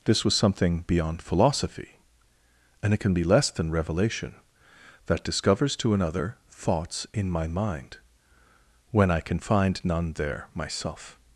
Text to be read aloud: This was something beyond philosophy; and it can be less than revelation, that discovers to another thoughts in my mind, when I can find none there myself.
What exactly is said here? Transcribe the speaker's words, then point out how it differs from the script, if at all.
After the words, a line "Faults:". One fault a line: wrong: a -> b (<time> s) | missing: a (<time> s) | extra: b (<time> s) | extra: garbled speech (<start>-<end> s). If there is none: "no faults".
This was something beyond philosophy; and it can be less than revelation, that discovers to another thoughts in my mind, when I can find none there myself.
Faults:
no faults